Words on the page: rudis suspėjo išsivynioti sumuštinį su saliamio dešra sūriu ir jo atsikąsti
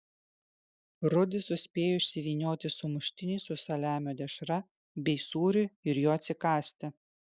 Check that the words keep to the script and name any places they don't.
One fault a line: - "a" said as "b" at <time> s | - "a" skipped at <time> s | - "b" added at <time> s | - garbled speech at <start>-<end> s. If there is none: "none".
- "bei" added at 5.1 s